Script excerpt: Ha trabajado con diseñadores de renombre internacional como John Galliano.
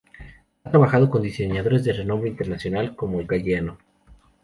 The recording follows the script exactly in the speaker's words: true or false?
false